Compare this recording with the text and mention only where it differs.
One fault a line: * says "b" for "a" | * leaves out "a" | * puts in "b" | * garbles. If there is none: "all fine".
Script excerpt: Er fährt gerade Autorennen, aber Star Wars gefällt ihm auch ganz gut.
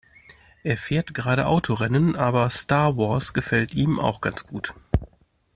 all fine